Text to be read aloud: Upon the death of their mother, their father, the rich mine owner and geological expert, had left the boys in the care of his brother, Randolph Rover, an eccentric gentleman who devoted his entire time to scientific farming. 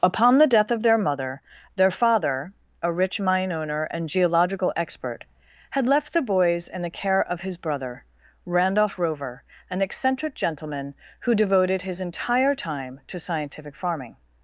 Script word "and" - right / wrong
right